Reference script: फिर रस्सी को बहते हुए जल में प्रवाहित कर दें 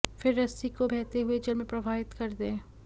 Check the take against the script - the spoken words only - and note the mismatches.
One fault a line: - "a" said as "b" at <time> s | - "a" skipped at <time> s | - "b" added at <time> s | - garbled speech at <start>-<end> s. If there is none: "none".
none